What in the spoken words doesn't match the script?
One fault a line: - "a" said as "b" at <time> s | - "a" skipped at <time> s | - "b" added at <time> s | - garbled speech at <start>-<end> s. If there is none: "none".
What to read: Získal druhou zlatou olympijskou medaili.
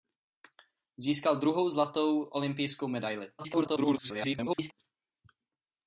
- garbled speech at 3.4-4.7 s